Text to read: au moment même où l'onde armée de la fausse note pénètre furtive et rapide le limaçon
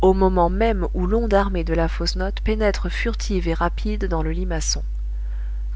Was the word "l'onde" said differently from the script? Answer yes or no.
no